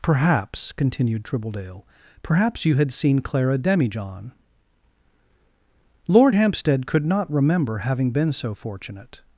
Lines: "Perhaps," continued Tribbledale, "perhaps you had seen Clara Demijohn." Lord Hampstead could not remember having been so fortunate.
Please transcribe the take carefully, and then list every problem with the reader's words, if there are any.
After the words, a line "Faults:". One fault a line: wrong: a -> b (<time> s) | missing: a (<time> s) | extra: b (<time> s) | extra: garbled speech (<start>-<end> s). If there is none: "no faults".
"Perhaps," continued Tribbledale, "perhaps you had seen Clara Demijohn." Lord Hampstead could not remember having been so fortunate.
Faults:
no faults